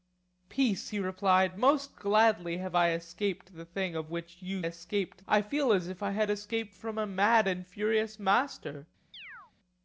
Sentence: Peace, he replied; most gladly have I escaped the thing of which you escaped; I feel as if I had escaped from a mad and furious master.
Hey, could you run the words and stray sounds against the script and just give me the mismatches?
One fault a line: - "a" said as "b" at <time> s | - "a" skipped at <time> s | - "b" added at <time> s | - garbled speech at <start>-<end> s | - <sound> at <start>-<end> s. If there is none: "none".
- chirp at 9.1-9.5 s